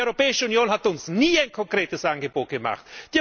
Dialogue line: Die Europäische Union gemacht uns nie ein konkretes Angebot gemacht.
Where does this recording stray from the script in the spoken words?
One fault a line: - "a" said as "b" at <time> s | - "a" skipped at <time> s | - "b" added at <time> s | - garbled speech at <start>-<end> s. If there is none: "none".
- "gemacht" said as "hat" at 0.7 s